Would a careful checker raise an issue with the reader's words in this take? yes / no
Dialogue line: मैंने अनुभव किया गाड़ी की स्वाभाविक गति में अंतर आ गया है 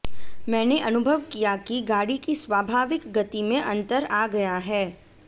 yes